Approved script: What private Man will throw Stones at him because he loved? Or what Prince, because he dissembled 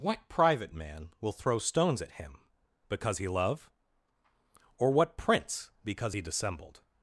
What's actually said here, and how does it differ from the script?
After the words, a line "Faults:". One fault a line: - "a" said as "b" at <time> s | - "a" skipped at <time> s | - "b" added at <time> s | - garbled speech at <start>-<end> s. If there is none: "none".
What private Man will throw Stones at him because he love? Or what Prince, because he dissembled
Faults:
- "loved" said as "love" at 3.3 s